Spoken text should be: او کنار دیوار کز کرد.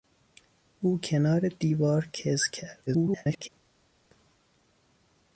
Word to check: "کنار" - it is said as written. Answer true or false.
true